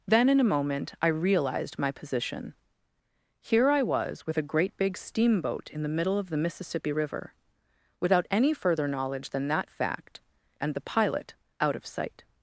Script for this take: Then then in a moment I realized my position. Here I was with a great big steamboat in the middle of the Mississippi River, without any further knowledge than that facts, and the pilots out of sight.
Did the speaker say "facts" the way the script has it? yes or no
no